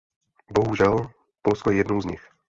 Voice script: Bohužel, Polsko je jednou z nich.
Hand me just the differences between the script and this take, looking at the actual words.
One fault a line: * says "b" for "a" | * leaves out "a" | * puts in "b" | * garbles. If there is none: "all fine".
all fine